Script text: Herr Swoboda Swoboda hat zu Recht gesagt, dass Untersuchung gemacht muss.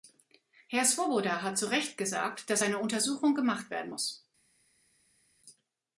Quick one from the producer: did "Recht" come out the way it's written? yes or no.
yes